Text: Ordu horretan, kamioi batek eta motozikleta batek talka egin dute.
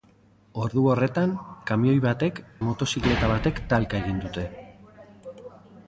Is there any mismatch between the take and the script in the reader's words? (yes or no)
yes